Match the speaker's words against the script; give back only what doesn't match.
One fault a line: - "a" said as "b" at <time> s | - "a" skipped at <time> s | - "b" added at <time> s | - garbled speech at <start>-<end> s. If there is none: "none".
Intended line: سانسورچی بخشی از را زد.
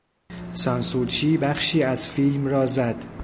- "فیلم" added at 2.1 s